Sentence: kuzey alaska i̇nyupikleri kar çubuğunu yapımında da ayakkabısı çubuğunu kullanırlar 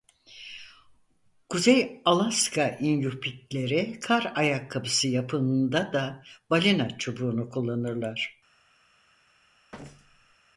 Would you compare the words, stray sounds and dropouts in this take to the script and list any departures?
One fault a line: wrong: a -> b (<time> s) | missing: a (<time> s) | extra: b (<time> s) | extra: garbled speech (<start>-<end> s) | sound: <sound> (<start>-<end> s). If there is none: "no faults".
wrong: çubuğunu -> ayakkabısı (4.3 s)
wrong: ayakkabısı -> balina (6.5 s)
sound: thud (9.7-10.4 s)